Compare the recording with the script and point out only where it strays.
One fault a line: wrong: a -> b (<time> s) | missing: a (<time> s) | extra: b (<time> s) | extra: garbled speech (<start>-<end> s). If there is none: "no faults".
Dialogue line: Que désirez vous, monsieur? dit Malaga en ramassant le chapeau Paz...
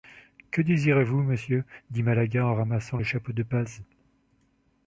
extra: de (3.3 s)